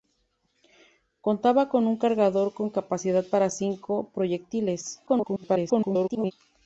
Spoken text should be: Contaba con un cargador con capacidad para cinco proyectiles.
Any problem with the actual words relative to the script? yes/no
yes